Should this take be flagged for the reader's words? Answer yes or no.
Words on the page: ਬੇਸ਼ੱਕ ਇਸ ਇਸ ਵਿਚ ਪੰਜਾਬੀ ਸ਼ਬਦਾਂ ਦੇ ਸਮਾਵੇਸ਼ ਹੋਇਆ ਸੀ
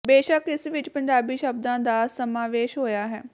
yes